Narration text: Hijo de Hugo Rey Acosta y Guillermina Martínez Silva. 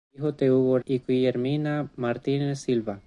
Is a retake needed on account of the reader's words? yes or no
yes